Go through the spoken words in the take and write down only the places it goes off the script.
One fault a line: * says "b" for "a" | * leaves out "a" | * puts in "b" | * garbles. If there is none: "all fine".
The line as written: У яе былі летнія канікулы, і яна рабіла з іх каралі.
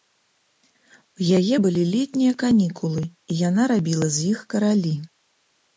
all fine